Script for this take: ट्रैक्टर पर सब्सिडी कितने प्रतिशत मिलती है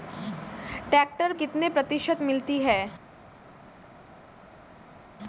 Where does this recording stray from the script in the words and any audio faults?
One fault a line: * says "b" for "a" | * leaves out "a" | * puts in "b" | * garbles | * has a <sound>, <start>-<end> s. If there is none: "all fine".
* leaves out "पर सब्सिडी"